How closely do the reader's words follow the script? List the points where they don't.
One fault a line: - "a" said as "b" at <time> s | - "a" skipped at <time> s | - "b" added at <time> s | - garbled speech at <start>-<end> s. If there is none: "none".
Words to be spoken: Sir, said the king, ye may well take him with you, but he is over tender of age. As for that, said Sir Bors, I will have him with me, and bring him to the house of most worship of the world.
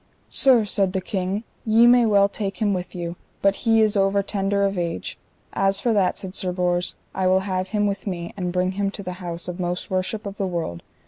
none